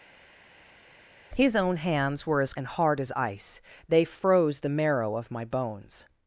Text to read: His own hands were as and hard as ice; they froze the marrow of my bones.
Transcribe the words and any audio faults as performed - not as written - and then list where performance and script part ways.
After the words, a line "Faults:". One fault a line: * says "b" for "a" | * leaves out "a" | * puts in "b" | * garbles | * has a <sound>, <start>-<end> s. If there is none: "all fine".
His own hands were as and hard as ice; they froze the marrow of my bones.
Faults:
all fine